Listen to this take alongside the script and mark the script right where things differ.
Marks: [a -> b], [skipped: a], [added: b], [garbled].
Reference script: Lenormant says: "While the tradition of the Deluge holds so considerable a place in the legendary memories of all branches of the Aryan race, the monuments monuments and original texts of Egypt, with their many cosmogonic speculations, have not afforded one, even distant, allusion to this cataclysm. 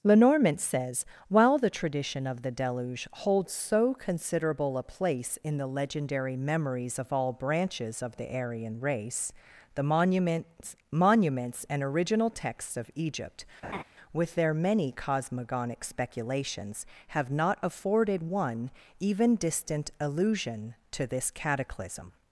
Lenormant says: "While the tradition of the Deluge holds so considerable a place in the legendary memories of all branches of the Aryan race, the monuments monuments and original texts of Egypt, with their many cosmogonic speculations, have not afforded one, even distant, allusion to this cataclysm.